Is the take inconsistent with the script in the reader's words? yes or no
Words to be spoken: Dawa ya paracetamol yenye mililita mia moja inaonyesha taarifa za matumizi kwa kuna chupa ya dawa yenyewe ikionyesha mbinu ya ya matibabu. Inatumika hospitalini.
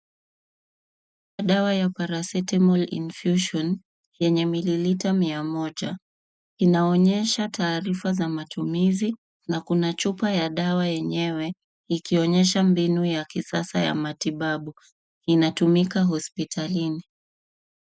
yes